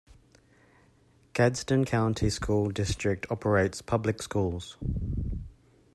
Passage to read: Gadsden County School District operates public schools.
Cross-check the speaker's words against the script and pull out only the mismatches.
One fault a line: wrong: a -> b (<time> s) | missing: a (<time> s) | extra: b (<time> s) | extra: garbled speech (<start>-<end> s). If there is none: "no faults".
no faults